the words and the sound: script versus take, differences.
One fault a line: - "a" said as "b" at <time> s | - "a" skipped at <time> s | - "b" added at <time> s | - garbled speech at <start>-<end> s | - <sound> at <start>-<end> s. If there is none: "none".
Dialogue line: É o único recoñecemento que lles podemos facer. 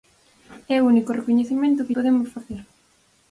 - "lles" skipped at 1.9 s